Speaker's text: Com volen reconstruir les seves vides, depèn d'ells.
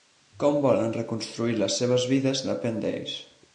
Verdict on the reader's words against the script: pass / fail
pass